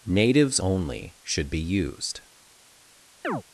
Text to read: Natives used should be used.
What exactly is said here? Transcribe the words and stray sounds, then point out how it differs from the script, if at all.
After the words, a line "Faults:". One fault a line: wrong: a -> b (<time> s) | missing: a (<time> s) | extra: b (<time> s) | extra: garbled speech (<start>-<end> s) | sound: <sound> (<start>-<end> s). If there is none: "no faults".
Natives only should be used.
Faults:
wrong: used -> only (0.6 s)
sound: chirp (3.2-3.4 s)